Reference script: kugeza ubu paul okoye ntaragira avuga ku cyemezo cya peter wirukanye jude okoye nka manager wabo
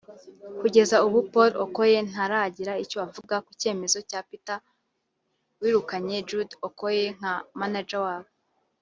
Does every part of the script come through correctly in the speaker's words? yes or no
no